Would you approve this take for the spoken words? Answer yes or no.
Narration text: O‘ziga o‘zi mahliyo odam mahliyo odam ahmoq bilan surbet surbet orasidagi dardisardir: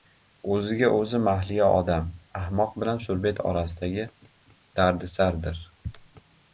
no